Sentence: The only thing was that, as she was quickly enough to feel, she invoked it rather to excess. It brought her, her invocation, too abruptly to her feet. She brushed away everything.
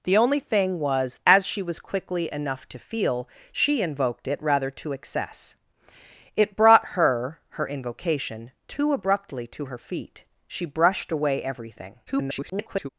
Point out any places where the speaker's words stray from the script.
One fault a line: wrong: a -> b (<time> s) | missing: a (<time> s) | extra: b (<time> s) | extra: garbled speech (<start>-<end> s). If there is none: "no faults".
missing: that (1.2 s)
extra: garbled speech (12.1-12.9 s)